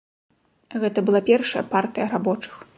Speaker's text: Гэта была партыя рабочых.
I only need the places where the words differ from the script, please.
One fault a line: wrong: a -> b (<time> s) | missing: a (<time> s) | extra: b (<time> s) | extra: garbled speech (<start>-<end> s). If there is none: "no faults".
extra: першая (1.3 s)